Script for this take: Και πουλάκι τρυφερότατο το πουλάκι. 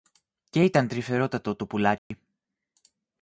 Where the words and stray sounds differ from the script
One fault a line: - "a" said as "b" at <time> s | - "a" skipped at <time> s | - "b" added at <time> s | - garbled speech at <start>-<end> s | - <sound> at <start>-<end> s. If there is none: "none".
- "πουλάκι" said as "ήταν" at 0.6 s
- dropout at 2.0-2.1 s